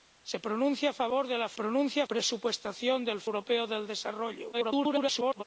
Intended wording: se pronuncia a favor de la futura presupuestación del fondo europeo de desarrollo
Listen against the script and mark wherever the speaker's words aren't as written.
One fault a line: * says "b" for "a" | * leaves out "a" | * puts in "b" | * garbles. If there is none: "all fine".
* says "pronuncia" for "futura"
* leaves out "fondo"
* garbles